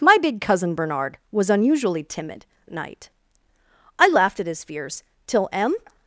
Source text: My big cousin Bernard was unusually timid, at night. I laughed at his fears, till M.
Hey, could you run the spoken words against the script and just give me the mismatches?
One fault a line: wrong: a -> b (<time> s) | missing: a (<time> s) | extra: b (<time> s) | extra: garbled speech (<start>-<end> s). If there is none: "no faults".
no faults